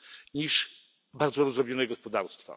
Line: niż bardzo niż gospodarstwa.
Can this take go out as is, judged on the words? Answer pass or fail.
fail